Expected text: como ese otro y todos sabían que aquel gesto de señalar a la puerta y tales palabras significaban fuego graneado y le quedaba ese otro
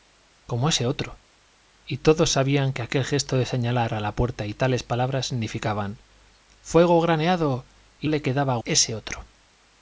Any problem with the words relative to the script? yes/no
no